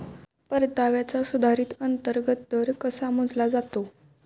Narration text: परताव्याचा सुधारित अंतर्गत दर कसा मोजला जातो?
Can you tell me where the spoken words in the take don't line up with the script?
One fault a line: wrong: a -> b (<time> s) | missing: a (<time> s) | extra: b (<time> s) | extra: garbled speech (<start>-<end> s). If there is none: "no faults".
no faults